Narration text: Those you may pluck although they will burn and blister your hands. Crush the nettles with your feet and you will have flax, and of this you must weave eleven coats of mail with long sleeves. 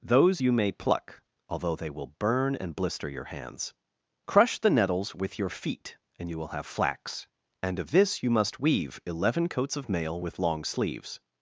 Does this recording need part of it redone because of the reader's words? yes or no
no